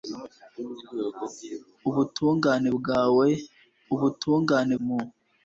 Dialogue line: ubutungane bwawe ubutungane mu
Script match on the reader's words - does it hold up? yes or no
yes